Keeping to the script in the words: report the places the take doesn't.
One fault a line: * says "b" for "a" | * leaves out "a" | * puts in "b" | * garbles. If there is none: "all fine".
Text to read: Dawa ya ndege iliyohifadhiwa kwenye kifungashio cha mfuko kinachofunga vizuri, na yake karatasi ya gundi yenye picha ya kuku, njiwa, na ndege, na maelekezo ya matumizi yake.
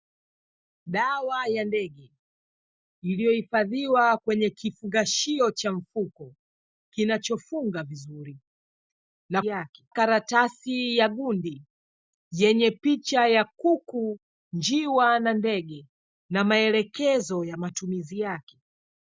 all fine